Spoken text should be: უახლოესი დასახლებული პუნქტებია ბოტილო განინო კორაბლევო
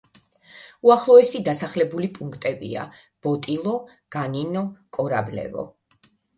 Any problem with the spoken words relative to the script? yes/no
no